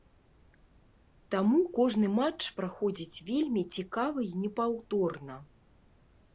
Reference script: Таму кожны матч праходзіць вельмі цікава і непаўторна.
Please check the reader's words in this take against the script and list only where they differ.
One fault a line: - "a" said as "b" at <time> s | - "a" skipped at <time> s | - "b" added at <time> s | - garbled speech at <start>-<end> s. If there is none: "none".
none